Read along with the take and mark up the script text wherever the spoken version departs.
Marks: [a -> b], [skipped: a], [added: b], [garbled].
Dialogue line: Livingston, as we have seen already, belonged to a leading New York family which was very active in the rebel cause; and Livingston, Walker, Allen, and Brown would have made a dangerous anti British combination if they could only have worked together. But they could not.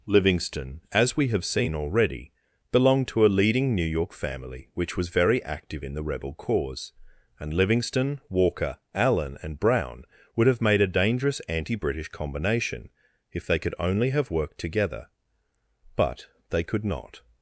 Livingston, as we have seen already, belonged to a leading New York family which was very active in the rebel cause; and Livingston, Walker, Allen, and Brown would have made a dangerous anti British combination if they could only have worked together. But they could not.